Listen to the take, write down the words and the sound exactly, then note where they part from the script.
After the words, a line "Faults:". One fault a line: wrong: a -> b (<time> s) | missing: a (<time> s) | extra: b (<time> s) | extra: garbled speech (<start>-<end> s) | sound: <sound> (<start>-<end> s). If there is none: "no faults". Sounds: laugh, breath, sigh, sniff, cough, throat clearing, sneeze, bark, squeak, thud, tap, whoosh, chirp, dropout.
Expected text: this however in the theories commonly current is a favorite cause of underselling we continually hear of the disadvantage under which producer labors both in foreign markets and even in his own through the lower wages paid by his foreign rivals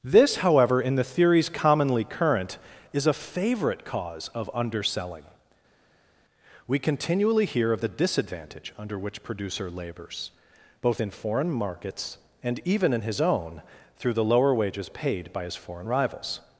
this however in the theories commonly current is a favorite cause of underselling we continually hear of the disadvantage under which producer labors both in foreign markets and even in his own through the lower wages paid by his foreign rivals
Faults:
no faults